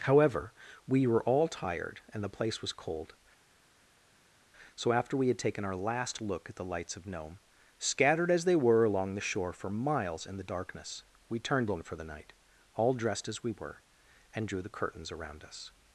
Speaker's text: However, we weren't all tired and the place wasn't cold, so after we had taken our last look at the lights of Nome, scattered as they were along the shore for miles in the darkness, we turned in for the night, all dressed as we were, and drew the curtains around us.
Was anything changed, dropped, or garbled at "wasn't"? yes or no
yes